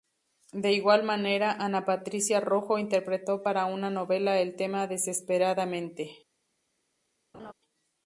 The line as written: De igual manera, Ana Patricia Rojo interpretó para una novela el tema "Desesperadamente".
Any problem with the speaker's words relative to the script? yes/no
no